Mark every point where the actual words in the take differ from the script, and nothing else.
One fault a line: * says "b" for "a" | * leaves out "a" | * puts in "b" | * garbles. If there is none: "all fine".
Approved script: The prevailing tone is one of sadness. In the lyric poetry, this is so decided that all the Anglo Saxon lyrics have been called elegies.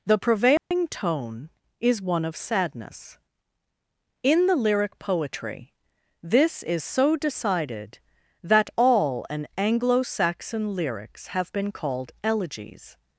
* says "an" for "the"